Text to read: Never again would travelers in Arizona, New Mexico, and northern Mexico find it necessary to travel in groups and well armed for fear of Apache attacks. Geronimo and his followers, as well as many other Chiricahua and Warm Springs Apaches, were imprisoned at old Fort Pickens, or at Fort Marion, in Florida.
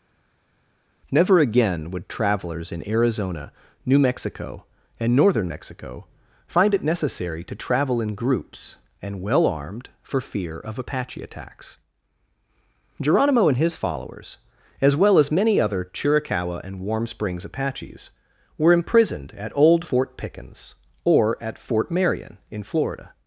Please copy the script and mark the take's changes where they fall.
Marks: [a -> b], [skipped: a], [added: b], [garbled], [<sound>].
Never again would travelers in Arizona, New Mexico, and northern Mexico find it necessary to travel in groups and well armed for fear of Apache attacks. Geronimo and his followers, as well as many other Chiricahua and Warm Springs Apaches, were imprisoned at old Fort Pickens, or at Fort Marion, in Florida.